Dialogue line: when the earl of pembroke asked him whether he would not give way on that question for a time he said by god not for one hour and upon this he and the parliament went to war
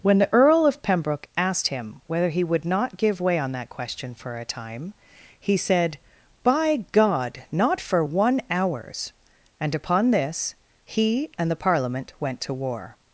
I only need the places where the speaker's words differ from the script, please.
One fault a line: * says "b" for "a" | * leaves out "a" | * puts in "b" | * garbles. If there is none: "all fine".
* says "hours" for "hour"